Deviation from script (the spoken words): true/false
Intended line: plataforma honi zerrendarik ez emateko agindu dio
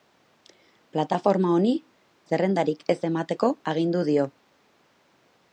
false